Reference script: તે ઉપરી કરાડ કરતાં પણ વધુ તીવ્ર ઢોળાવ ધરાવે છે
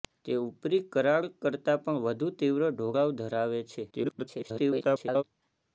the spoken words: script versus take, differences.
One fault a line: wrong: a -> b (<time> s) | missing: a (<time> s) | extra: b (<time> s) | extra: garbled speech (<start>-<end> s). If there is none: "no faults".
extra: garbled speech (3.9-5.2 s)